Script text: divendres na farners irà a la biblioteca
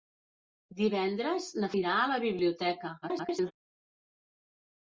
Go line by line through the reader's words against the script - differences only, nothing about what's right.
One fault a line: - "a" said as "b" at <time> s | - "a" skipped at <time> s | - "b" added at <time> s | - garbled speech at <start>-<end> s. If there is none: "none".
- "farners" skipped at 1.7 s
- garbled speech at 3.0-3.5 s